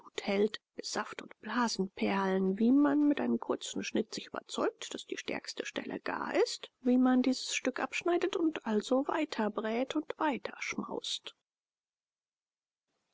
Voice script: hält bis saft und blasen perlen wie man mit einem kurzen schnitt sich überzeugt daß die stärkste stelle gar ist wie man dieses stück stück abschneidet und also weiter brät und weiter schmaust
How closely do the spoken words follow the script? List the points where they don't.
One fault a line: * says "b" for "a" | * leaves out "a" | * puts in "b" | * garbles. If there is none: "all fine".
* leaves out "stück"